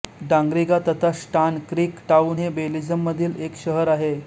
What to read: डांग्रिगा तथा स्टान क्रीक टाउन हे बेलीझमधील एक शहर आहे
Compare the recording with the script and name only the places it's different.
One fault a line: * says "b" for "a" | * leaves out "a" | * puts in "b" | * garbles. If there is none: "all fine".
all fine